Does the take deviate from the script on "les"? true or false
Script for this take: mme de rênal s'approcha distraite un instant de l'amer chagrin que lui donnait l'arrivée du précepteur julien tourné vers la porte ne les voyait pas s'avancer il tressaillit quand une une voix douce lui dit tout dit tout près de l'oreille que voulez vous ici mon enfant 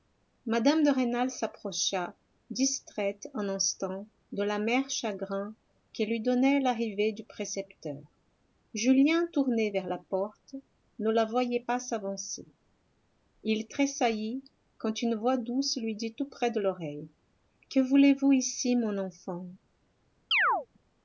true